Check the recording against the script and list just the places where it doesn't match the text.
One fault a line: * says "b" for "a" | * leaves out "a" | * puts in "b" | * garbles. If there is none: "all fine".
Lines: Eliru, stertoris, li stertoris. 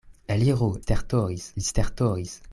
all fine